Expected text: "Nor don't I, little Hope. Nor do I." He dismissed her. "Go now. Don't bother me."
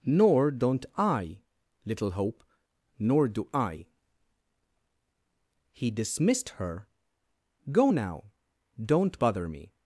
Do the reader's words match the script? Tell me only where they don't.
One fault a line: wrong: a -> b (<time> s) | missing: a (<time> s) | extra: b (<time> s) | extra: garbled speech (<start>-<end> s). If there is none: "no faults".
no faults